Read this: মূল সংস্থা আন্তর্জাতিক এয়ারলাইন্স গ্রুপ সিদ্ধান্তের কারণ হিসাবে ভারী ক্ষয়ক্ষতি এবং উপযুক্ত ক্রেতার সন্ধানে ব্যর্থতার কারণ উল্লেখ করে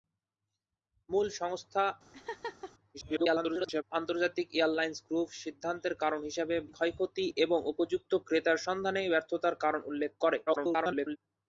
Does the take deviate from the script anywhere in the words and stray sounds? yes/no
yes